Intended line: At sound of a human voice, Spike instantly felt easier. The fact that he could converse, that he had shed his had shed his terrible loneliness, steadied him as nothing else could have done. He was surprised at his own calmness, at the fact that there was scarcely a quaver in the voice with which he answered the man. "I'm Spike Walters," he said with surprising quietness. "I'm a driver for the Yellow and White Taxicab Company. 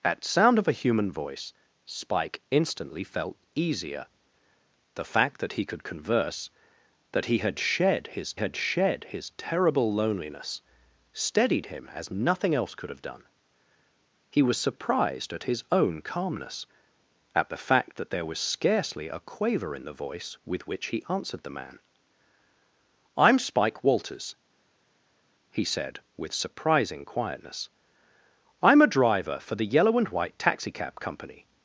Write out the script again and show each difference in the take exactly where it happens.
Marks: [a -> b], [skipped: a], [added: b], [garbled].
At sound of a human voice, Spike instantly felt easier. The fact that he could converse, that he had shed his had shed his terrible loneliness, steadied him as nothing else could have done. He was surprised at his own calmness, at the fact that there was scarcely a quaver in the voice with which he answered the man. "I'm Spike Walters," he said with surprising quietness. "I'm a driver for the Yellow and White Taxicab Company.